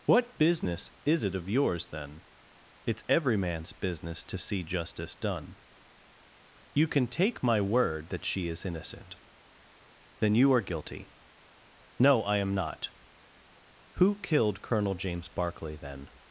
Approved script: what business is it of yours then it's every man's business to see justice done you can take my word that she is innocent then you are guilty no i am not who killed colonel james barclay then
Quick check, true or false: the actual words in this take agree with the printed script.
true